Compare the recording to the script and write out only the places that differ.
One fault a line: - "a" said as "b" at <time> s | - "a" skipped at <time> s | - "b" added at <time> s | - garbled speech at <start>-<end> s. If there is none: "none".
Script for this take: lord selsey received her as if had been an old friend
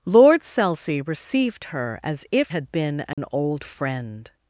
none